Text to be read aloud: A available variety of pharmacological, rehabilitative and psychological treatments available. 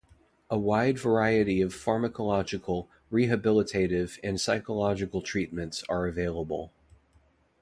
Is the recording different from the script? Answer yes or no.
yes